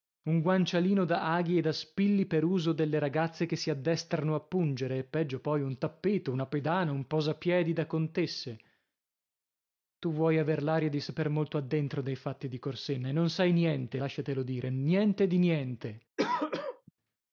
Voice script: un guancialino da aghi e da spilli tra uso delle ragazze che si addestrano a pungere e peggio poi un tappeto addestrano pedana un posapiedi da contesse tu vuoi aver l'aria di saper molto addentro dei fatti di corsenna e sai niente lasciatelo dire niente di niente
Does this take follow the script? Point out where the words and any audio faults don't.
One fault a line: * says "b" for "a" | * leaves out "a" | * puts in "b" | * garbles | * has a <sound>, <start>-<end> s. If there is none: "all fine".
* says "per" for "tra"
* says "una" for "addestrano"
* puts in "non"
* has a throat clearing, 16.2-16.9 s